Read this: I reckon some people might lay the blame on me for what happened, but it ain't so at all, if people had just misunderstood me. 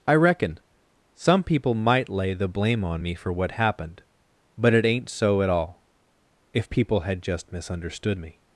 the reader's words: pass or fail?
pass